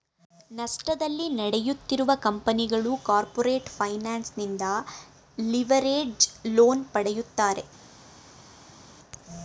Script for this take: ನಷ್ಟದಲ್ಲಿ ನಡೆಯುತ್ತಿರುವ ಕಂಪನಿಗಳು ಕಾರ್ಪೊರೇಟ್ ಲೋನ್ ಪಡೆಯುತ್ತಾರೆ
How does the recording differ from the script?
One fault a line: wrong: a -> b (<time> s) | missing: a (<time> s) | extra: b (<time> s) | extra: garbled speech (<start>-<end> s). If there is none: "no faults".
extra: ಫೈನಾನ್ಸ್ ನಿಂದ ಲಿವರೇಜ್ಡ್ (3.8 s)